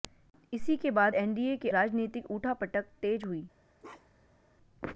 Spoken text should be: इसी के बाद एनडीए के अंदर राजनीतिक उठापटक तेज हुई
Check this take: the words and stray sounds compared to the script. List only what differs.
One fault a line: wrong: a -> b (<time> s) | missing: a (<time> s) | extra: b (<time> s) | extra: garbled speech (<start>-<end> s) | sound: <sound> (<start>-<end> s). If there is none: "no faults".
missing: अंदर (1.7 s)
sound: bark (3.8-4.4 s)